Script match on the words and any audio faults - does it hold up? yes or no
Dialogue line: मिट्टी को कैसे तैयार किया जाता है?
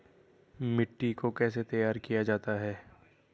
yes